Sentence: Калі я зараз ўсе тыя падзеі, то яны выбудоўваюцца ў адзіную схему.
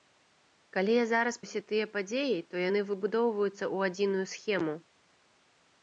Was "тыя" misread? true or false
false